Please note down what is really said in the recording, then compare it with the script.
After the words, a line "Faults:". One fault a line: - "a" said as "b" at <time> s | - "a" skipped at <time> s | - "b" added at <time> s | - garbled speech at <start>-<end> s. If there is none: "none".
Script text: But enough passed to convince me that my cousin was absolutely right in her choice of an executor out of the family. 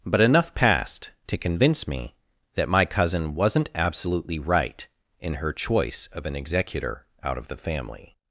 But enough passed to convince me that my cousin wasn't absolutely right in her choice of an executor out of the family.
Faults:
- "was" said as "wasn't" at 3.4 s